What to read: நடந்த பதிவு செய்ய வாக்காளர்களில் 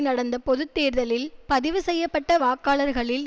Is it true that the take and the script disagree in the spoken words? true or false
true